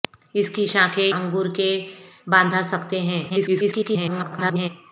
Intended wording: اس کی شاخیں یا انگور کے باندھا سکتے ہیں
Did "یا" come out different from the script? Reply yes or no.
yes